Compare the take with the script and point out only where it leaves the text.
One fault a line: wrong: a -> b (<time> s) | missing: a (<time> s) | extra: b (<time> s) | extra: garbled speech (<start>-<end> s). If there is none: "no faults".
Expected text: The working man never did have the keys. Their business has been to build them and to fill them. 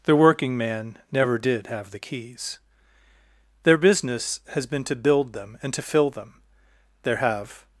extra: There have (7.0 s)